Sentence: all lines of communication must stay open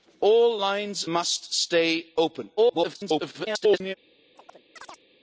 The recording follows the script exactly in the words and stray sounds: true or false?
false